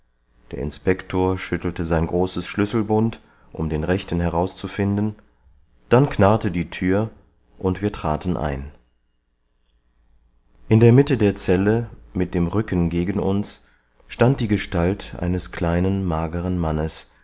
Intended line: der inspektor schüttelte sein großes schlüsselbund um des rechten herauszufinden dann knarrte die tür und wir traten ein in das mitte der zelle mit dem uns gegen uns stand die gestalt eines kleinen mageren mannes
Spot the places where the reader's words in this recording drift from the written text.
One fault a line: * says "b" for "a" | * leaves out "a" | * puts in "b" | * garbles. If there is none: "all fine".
* says "den" for "des"
* says "der" for "das"
* says "rücken" for "uns"